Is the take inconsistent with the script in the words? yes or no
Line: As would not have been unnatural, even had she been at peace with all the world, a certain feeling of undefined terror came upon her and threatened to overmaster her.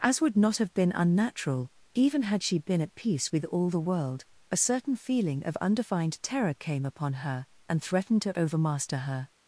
no